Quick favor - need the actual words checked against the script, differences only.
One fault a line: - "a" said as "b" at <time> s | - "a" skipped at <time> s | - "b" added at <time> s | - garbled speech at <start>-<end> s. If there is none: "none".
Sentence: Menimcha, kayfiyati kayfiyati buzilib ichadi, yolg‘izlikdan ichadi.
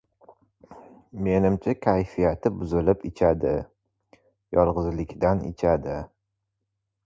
- "kayfiyati" skipped at 2.5 s